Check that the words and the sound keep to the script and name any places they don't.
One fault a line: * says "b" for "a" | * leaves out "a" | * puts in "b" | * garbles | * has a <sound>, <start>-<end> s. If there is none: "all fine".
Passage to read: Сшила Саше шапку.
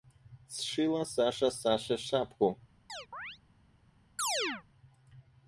* puts in "Саша"
* has a chirp, 2.9-3.4 s
* has a chirp, 4.2-4.6 s